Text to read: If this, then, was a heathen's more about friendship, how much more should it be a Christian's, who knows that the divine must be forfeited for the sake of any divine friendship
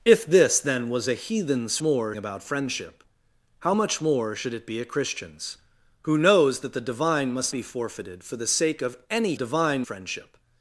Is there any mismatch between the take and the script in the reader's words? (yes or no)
no